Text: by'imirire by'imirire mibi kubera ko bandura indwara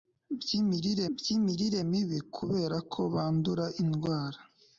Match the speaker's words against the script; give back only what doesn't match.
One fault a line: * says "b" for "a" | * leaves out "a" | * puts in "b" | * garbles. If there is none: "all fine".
all fine